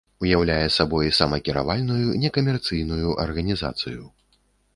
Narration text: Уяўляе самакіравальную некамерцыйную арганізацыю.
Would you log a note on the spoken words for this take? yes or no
yes